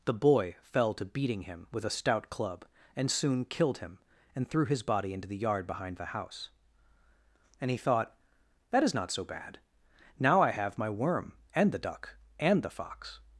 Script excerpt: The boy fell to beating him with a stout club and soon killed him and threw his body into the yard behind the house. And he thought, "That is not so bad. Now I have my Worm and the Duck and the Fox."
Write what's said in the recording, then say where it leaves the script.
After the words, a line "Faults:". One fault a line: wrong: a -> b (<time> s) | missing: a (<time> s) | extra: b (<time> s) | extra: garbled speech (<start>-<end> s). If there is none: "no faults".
The boy fell to beating him with a stout club and soon killed him and threw his body into the yard behind the house. And he thought, "That is not so bad. Now I have my Worm and the Duck and the Fox."
Faults:
no faults